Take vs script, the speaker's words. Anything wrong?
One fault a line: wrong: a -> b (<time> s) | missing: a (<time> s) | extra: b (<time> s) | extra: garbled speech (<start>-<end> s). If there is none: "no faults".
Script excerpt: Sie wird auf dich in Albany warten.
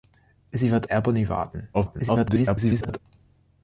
missing: auf dich in (0.9 s)
extra: garbled speech (1.7-3.0 s)